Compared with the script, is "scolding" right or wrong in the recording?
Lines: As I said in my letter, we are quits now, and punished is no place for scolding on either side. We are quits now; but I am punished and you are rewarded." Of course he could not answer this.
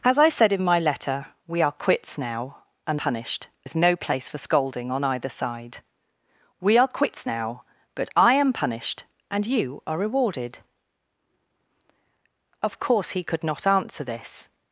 right